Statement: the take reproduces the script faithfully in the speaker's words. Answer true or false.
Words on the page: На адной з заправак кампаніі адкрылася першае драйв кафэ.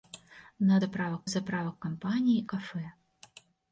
false